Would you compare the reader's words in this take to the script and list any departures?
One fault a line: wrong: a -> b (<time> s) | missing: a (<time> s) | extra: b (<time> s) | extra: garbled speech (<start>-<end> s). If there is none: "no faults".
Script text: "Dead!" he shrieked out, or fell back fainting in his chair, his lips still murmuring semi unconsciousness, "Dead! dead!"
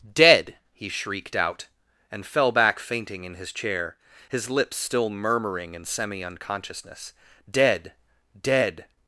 wrong: or -> and (2.1 s)
extra: in (5.7 s)